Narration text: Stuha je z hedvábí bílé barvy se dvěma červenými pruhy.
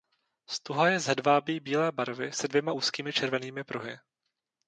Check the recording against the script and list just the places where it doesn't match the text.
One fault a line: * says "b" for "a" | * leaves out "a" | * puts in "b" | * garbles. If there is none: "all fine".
* puts in "úzkými"